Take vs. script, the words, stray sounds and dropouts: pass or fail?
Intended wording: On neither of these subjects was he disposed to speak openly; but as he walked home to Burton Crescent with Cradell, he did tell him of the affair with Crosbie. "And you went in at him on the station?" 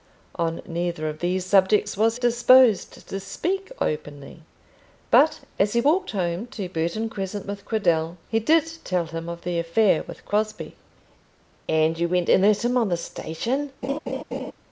fail